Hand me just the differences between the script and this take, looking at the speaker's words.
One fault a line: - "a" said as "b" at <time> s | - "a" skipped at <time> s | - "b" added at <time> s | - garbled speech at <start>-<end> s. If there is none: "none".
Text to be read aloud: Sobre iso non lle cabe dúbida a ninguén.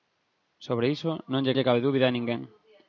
- "lle" added at 1.5 s